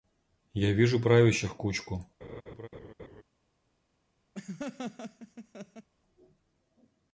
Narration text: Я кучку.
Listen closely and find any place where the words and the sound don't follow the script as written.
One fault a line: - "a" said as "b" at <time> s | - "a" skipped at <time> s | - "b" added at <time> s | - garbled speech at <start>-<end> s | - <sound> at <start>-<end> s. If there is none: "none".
- "вижу правящих" added at 0.7 s
- laugh at 2.2-3.2 s
- laugh at 4.3-5.9 s